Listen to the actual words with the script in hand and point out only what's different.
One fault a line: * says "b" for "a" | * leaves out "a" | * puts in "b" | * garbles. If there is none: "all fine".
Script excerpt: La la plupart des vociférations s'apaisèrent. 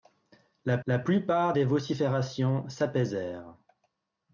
all fine